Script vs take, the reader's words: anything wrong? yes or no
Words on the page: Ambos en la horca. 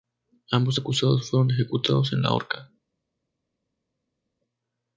yes